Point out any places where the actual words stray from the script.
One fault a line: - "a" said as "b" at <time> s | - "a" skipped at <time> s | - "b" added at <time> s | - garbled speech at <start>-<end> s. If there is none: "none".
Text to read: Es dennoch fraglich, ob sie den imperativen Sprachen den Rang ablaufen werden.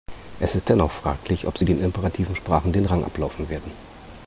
- "ist" added at 0.6 s